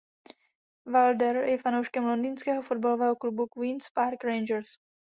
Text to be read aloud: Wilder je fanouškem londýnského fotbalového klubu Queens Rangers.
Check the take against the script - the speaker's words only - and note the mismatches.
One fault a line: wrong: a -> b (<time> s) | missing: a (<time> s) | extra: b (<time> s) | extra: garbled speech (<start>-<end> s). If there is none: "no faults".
extra: Park (3.9 s)